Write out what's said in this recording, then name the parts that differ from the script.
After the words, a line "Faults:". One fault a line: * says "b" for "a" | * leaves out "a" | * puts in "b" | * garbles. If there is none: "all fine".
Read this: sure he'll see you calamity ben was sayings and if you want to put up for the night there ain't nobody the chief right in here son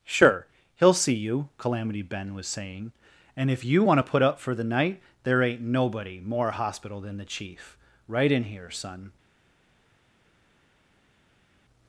sure he'll see you calamity ben was saying and if you want to put up for the night there ain't nobody more hospital than the chief right in here son
Faults:
* says "saying" for "sayings"
* puts in "more hospital than"